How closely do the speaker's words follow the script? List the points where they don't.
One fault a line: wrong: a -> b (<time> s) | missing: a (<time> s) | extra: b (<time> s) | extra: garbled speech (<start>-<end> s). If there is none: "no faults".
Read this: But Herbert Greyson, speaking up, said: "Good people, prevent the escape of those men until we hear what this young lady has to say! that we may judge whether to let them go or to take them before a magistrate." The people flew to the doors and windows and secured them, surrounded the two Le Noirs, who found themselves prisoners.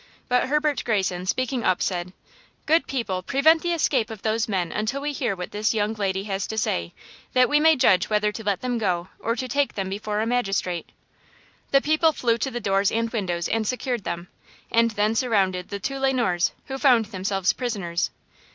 extra: and then (14.7 s)